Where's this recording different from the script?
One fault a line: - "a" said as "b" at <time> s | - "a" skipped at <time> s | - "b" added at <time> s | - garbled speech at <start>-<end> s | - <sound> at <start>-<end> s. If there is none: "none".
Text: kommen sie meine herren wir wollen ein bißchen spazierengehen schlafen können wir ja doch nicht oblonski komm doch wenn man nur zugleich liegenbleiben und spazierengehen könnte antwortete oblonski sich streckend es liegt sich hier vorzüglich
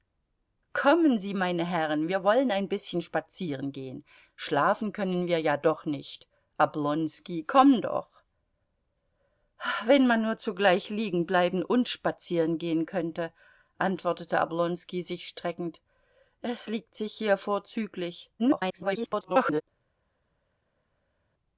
- garbled speech at 18.4-19.6 s